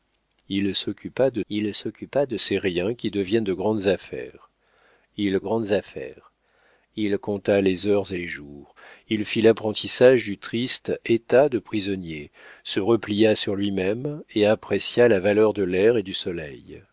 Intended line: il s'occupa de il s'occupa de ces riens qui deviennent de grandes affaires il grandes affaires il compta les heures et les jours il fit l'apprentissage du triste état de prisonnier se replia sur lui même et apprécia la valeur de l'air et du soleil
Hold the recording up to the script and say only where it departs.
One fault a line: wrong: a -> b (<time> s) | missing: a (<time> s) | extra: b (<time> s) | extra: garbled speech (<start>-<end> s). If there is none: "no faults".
no faults